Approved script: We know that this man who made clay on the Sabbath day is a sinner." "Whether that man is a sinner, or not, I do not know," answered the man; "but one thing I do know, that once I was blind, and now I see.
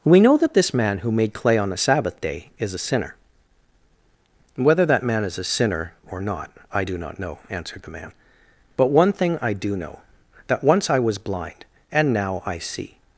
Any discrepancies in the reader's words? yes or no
no